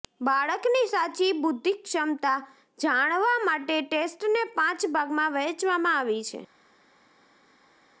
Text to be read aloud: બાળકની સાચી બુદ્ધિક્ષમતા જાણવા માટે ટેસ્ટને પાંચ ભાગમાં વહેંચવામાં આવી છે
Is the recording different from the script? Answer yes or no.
no